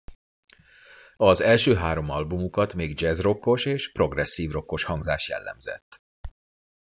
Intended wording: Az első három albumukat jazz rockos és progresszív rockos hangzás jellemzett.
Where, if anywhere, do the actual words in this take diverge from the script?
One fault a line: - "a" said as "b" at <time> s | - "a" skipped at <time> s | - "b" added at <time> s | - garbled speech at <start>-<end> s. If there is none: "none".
- "még" added at 2.7 s